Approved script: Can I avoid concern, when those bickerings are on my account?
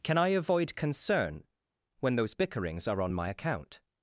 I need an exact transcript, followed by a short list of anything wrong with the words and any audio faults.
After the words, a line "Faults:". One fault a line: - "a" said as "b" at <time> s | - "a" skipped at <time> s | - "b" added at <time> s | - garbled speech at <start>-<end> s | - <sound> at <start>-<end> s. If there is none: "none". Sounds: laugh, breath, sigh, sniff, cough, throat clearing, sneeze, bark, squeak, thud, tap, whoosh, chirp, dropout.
Can I avoid concern, when those bickerings are on my account?
Faults:
none